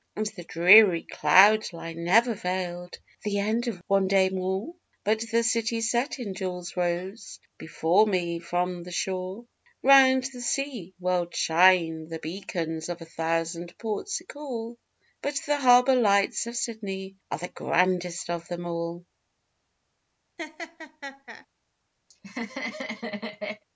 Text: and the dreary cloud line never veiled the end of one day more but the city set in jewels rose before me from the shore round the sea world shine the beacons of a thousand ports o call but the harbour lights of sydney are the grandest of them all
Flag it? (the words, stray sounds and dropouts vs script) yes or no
yes